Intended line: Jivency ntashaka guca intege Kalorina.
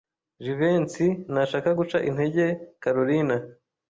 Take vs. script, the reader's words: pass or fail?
pass